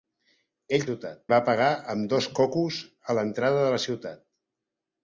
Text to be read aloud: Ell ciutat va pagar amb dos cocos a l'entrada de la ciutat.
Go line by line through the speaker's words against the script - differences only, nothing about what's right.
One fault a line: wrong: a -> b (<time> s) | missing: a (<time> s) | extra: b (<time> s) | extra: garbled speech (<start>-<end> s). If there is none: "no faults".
no faults